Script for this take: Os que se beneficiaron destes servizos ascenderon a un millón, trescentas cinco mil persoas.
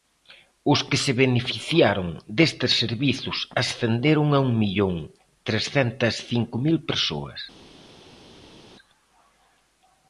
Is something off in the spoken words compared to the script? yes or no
no